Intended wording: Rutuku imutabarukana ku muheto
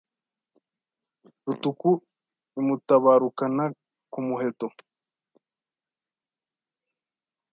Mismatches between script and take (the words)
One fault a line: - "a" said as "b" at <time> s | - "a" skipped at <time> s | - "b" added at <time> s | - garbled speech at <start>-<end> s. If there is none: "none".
none